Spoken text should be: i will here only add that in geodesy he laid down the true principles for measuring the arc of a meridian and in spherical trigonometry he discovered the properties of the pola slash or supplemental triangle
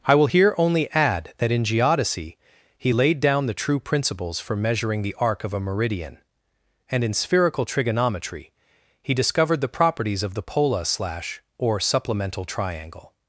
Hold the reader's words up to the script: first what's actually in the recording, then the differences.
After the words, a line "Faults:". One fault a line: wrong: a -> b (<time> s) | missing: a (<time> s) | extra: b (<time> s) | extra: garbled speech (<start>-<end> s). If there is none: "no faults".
i will here only add that in geodesy he laid down the true principles for measuring the arc of a meridian and in spherical trigonometry he discovered the properties of the pola slash or supplemental triangle
Faults:
no faults